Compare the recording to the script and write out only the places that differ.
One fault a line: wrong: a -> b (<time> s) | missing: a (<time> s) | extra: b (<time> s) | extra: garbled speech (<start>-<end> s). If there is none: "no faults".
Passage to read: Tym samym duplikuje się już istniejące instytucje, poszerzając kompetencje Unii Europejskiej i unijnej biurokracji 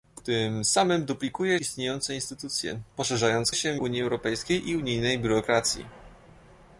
missing: się już (1.6 s)
wrong: kompetencje -> się (3.5 s)